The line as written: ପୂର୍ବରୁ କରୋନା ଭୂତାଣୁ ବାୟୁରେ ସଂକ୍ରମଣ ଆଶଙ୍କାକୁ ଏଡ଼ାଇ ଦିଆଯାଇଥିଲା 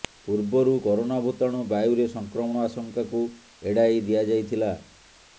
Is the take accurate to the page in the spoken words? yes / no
yes